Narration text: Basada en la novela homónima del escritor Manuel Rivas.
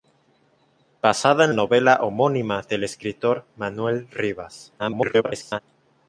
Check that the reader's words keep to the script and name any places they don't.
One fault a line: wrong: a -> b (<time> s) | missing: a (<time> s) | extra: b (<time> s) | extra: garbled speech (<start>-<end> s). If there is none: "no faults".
missing: la (1.5 s)
extra: garbled speech (4.8-5.6 s)